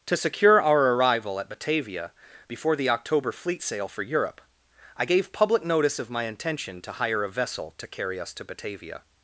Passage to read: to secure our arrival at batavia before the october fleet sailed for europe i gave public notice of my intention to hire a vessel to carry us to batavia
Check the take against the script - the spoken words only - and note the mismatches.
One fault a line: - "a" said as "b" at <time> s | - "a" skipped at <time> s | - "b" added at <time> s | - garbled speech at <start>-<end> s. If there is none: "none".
- "sailed" said as "sail" at 3.6 s